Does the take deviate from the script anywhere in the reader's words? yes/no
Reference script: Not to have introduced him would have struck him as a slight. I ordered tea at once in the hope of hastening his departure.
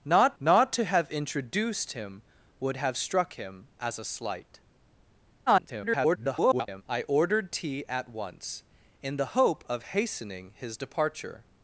yes